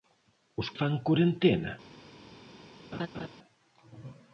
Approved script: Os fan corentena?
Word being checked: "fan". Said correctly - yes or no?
yes